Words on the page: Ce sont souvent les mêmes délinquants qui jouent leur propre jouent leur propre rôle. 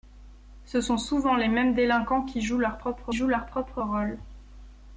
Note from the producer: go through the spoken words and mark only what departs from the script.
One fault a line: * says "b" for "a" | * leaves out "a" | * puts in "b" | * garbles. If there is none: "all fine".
all fine